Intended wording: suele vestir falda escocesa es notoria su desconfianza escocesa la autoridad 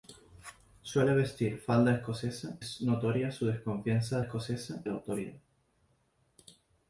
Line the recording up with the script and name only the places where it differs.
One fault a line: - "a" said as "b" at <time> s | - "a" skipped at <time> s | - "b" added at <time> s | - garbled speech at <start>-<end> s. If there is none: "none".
none